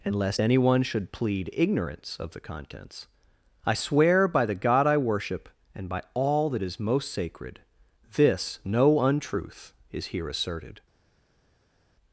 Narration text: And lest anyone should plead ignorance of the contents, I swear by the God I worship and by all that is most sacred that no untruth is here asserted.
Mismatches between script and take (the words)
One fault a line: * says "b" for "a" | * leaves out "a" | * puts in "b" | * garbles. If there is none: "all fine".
* says "this" for "that"